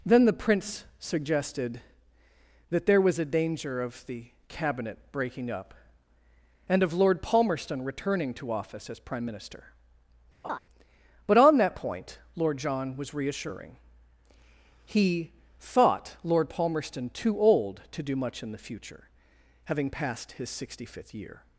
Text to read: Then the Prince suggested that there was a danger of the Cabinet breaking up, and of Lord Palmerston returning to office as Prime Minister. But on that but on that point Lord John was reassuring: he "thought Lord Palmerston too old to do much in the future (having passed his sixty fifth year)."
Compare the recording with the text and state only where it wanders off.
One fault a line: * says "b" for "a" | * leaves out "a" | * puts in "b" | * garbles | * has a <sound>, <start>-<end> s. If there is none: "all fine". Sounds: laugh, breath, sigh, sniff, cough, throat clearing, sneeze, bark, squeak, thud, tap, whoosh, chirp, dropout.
* has a laugh, 10.4-10.6 s
* leaves out "but on that"